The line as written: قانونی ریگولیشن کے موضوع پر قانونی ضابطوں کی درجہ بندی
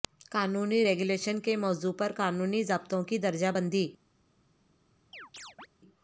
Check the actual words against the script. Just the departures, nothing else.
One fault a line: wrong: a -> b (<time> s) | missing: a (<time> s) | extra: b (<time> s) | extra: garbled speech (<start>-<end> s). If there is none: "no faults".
no faults